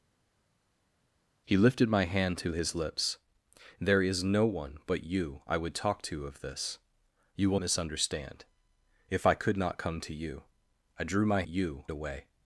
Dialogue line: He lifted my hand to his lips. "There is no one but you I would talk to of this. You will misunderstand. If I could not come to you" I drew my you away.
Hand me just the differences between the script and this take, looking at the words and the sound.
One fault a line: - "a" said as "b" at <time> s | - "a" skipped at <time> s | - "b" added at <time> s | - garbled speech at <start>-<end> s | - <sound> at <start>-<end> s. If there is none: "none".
none